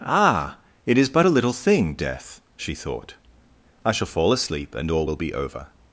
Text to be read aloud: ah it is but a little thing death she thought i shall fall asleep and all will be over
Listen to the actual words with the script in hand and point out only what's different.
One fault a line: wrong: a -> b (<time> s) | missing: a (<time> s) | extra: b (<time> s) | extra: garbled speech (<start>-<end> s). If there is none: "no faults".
no faults